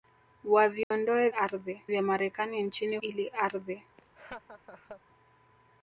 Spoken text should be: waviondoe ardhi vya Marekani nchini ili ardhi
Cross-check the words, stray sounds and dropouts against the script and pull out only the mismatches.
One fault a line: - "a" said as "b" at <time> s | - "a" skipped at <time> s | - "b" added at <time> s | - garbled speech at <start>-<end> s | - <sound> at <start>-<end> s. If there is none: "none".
- dropout at 0.8-0.9 s
- laugh at 4.0-5.0 s